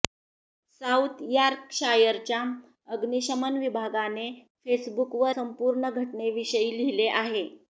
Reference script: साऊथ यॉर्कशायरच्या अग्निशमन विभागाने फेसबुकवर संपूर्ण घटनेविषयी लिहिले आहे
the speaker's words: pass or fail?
pass